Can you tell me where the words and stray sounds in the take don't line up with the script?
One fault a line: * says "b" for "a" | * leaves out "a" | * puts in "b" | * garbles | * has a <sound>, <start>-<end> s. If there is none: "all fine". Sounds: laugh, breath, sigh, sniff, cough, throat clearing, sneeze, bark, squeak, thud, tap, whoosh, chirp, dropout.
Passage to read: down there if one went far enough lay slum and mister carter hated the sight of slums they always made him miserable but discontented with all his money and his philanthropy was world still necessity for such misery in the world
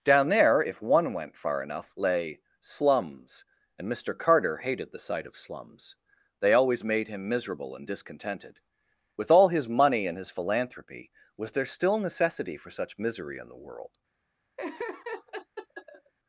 * says "slums" for "slum"
* says "and" for "but"
* says "there" for "world"
* has a laugh, 14.6-16.1 s